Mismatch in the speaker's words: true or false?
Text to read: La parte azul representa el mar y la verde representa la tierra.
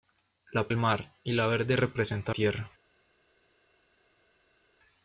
true